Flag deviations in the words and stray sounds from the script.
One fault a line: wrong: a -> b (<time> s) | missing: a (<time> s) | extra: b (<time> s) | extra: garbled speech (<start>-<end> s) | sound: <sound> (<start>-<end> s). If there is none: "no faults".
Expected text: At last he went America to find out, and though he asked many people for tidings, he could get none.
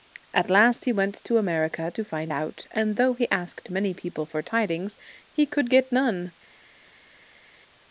extra: to (1.2 s)